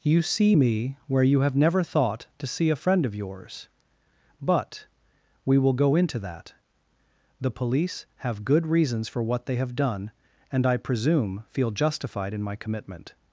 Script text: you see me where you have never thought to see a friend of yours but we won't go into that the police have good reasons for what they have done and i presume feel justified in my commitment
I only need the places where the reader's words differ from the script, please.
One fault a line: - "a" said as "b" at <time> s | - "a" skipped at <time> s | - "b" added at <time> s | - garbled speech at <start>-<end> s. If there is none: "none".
- "won't" said as "will" at 5.6 s